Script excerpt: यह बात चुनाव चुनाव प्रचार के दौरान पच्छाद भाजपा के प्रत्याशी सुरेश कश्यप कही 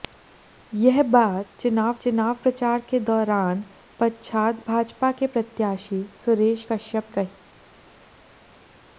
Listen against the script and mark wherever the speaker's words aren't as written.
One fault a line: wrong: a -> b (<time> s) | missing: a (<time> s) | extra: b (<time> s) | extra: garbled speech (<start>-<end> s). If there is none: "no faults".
no faults